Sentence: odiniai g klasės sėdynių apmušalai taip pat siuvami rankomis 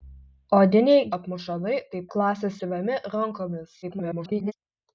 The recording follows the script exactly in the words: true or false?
false